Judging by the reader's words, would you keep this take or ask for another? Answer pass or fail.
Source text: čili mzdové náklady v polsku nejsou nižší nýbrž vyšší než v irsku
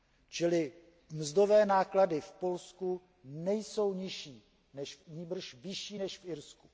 pass